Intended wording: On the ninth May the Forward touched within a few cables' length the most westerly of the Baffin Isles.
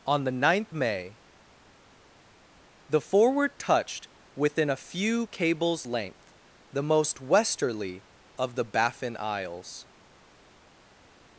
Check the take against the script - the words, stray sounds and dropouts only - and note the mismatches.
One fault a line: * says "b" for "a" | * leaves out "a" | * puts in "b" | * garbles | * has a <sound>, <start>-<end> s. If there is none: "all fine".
all fine